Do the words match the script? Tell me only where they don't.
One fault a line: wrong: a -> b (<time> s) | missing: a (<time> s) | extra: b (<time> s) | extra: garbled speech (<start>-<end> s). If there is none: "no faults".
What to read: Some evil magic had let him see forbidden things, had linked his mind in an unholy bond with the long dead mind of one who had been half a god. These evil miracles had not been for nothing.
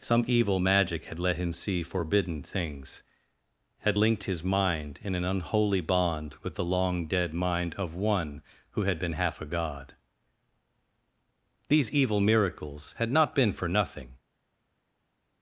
no faults